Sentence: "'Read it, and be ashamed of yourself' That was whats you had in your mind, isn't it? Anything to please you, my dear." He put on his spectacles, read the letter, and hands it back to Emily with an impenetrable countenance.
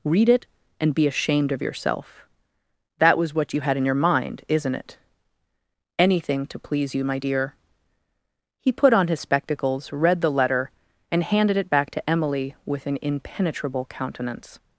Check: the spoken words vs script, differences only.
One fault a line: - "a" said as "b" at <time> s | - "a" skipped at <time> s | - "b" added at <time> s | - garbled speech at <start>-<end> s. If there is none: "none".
- "whats" said as "what" at 3.3 s
- "hands" said as "handed" at 11.2 s